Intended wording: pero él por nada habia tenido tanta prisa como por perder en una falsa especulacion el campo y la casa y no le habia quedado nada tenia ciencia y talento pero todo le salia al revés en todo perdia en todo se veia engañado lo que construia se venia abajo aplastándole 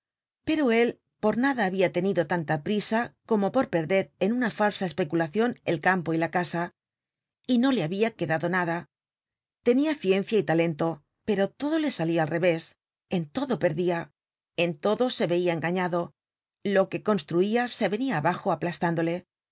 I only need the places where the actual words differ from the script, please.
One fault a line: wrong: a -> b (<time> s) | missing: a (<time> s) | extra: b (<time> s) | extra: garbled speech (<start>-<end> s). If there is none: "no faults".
no faults